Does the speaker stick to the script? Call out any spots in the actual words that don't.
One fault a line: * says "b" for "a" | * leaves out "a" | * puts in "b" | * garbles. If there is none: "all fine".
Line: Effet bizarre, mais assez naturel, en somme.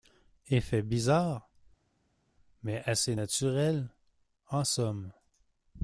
all fine